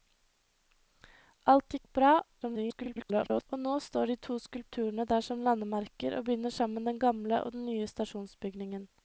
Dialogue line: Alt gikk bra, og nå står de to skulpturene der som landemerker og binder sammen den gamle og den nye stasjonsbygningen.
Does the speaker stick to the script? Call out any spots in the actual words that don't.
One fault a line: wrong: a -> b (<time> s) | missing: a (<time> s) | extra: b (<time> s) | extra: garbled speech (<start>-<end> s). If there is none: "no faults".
extra: garbled speech (2.4-3.5 s)